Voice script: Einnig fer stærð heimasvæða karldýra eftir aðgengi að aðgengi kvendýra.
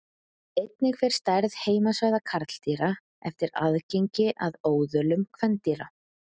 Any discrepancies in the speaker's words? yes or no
yes